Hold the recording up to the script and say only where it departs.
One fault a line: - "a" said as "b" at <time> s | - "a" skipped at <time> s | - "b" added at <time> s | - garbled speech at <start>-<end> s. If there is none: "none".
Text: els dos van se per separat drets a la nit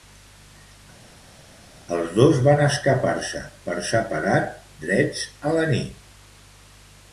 - "escapar" added at 2.6 s